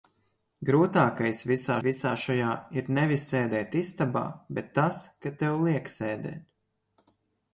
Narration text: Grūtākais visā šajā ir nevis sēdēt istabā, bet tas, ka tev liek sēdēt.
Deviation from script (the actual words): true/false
true